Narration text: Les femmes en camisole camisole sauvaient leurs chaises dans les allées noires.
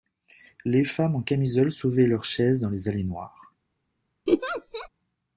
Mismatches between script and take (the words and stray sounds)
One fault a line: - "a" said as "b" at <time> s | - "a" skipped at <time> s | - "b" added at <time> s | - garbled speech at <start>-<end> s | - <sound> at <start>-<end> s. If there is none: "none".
- "camisole" skipped at 1.7 s
- laugh at 4.3-4.9 s